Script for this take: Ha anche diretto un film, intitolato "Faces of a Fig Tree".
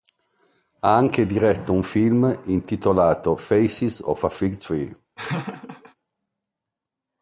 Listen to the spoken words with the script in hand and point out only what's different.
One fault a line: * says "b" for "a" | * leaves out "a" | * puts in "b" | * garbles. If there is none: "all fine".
all fine